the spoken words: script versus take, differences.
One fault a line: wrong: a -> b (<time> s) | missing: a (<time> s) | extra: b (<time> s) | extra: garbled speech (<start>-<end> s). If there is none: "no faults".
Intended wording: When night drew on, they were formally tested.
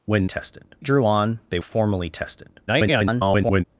wrong: night -> tested (0.2 s)
missing: were (1.6 s)
extra: garbled speech (2.7-3.6 s)